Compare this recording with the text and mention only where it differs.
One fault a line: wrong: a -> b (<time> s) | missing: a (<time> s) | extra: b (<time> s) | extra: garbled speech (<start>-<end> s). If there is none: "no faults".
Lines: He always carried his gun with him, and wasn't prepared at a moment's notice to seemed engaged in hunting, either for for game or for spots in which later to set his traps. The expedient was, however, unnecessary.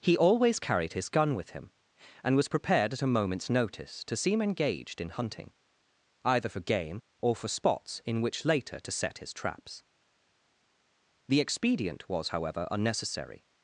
wrong: wasn't -> was (2.4 s)
wrong: seemed -> seem (4.2 s)
missing: for (6.6 s)